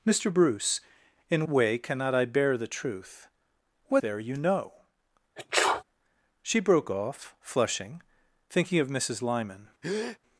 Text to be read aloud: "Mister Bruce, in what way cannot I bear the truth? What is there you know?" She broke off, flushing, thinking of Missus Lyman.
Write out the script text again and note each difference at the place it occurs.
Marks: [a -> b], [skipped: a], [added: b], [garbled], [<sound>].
"Mister Bruce, in [skipped: what] way cannot I bear the truth? What [skipped: is] there you know?" [sneeze] She broke off, flushing, thinking of Missus Lyman. [breath]